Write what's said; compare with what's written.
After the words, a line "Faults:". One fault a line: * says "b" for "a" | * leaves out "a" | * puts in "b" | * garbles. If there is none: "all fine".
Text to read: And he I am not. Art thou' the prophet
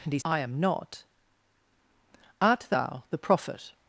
And he I am not. Art thou' the prophet
Faults:
all fine